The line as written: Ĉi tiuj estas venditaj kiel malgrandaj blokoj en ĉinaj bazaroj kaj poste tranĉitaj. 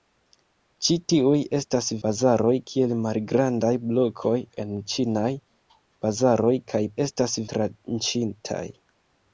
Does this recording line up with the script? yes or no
no